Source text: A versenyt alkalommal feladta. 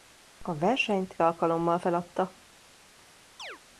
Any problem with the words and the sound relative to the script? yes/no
yes